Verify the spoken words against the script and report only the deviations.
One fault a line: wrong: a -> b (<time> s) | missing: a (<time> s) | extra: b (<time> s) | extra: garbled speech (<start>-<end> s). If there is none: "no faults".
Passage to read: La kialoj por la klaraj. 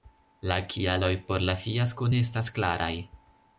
extra: fiasko ne estas (1.7 s)